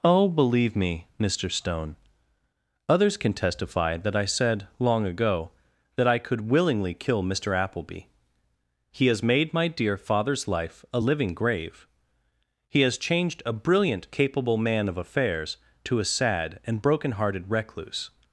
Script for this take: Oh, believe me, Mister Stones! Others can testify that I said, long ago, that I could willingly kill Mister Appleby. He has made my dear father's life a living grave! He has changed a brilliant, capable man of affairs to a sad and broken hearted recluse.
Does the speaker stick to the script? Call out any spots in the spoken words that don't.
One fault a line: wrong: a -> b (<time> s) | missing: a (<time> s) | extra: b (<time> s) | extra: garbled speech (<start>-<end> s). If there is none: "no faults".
wrong: Stones -> Stone (1.5 s)